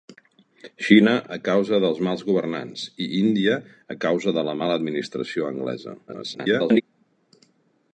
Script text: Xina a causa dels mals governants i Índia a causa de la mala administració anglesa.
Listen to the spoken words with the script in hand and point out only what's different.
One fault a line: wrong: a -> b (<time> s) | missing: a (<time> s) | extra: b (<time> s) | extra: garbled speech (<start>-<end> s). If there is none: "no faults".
extra: garbled speech (6.1-6.8 s)